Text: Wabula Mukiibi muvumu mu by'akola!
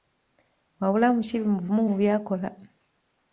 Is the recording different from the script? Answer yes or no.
no